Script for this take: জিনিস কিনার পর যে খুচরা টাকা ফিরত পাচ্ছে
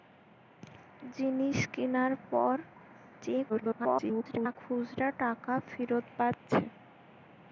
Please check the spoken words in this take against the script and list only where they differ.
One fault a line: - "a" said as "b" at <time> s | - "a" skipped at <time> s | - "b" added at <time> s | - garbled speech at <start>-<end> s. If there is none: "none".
- garbled speech at 3.5-4.6 s